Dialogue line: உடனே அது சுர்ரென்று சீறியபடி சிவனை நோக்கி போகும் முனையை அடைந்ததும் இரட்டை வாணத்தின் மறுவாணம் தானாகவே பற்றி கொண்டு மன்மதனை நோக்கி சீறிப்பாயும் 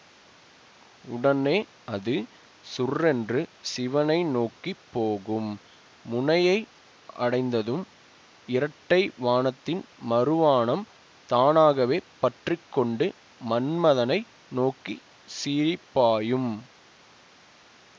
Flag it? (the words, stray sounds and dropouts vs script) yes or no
yes